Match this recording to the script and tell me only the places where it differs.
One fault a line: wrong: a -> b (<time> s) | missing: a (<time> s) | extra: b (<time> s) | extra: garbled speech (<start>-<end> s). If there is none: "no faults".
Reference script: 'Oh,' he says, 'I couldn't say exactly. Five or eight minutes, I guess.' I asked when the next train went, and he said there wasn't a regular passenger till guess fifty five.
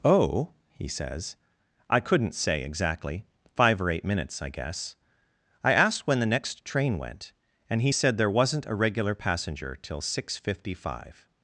wrong: guess -> six (10.0 s)